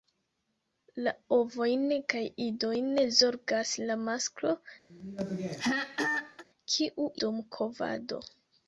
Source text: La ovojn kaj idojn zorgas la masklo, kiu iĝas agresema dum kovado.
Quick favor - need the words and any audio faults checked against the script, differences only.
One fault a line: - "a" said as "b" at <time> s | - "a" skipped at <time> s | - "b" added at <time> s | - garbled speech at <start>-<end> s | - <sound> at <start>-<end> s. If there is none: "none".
- throat clearing at 4.9-6.4 s
- "iĝas agresema" skipped at 7.1 s